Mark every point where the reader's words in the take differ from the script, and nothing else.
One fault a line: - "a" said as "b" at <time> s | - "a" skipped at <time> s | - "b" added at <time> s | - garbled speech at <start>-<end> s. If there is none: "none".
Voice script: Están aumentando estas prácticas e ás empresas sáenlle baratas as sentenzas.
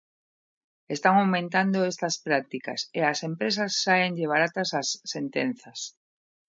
none